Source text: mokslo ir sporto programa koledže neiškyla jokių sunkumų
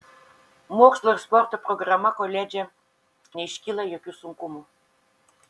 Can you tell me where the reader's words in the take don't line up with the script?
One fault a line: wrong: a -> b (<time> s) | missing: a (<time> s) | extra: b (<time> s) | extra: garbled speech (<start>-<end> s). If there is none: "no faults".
no faults